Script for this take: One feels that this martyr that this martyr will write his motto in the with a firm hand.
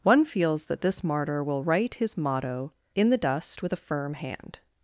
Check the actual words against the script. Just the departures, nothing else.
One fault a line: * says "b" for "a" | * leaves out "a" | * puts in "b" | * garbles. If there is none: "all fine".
* leaves out "that this martyr"
* puts in "dust"